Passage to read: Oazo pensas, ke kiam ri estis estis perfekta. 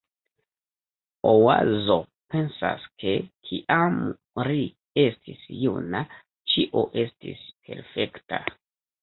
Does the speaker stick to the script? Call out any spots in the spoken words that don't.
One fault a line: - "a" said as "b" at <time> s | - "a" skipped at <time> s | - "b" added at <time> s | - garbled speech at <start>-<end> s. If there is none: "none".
- "juna ĉio" added at 5.6 s